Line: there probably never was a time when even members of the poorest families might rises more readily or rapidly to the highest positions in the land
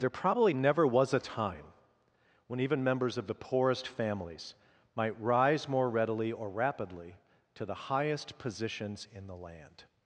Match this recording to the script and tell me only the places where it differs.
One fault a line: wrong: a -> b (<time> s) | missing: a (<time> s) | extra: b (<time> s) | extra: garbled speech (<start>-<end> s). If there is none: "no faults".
wrong: rises -> rise (5.2 s)